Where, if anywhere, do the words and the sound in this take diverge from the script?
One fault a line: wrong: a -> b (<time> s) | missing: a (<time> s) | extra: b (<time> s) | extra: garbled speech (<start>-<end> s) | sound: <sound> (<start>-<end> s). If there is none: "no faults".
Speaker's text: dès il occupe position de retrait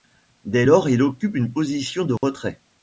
extra: lors (0.6 s)
extra: une (1.4 s)
sound: dropout (2.2-2.2 s)